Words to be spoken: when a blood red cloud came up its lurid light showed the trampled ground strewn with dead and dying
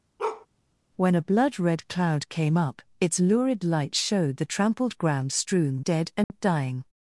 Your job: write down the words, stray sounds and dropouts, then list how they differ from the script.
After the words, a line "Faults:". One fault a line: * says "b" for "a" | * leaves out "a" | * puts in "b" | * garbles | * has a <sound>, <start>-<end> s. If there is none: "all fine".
when a blood red cloud came up its lurid light showed the trampled ground strewn dead and dying
Faults:
* has a bark, 0.2-0.5 s
* leaves out "with"
* has a dropout, 6.2-6.3 s